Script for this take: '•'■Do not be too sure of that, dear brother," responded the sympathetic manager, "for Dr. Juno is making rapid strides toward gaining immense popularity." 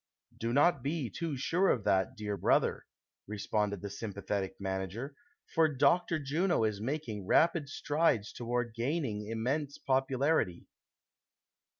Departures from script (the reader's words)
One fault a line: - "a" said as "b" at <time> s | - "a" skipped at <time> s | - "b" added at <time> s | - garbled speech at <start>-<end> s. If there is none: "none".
none